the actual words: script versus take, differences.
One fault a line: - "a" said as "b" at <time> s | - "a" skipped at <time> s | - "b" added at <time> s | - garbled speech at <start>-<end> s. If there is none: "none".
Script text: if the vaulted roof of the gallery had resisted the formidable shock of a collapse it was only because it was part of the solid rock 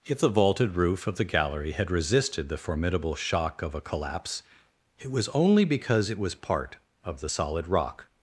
none